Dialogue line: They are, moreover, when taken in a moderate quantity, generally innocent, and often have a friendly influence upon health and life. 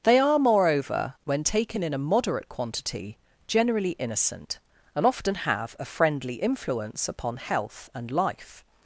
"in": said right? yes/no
yes